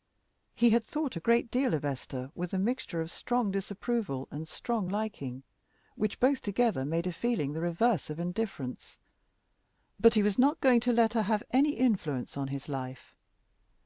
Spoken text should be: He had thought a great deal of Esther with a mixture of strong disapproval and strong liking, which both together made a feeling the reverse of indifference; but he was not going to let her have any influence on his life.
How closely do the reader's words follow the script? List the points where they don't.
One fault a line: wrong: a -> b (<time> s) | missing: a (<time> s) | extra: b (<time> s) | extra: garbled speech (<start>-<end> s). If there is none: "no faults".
no faults